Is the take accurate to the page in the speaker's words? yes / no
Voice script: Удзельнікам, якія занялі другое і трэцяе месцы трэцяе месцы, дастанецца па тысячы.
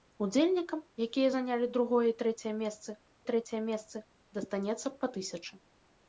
yes